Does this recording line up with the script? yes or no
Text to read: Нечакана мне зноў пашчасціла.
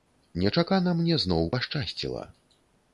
yes